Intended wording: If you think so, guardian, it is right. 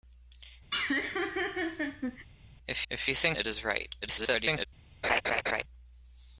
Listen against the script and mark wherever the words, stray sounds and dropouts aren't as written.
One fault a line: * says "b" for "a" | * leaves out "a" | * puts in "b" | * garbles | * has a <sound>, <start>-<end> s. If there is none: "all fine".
* has a laugh, 0.7-2.3 s
* puts in "if"
* leaves out "so guardian"
* garbles
* has a laugh, 5.0-5.6 s